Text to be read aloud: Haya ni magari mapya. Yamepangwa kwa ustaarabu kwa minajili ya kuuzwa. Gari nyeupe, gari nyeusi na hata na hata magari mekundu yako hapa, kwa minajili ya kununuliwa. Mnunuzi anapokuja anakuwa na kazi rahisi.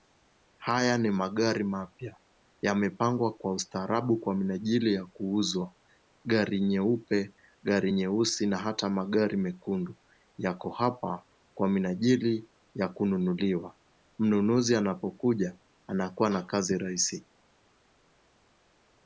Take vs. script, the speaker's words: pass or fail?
fail